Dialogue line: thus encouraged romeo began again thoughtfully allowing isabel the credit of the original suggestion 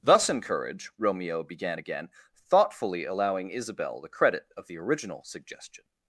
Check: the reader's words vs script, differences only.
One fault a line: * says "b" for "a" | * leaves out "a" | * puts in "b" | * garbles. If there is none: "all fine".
* says "encourage" for "encouraged"